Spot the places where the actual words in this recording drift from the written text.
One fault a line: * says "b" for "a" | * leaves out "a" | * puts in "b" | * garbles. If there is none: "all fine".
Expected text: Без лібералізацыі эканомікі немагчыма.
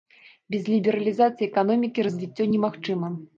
* puts in "развіццё"